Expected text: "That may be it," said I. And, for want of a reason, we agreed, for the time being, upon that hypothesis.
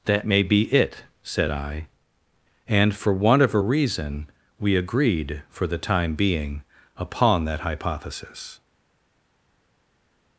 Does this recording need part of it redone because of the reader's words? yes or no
no